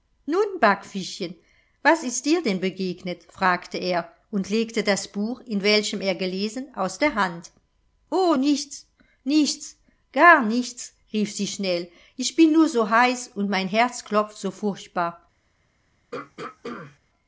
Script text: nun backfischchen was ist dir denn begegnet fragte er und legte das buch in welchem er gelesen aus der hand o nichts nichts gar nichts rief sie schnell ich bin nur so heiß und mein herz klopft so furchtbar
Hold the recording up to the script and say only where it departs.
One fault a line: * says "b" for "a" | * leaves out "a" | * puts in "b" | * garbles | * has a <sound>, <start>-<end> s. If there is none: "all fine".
* has a throat clearing, 16.1-17.0 s